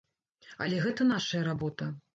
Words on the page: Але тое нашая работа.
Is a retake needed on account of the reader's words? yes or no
yes